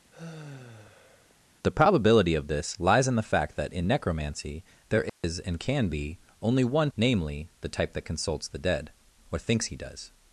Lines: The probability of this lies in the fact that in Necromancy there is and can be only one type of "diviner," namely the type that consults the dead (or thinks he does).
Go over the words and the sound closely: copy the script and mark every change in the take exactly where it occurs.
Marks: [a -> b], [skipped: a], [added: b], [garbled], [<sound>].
[sigh] The probability of this lies in the fact that in Necromancy there is [dropout] and can be only one [skipped: type of "diviner,"] namely the type that consults the dead (or thinks he does).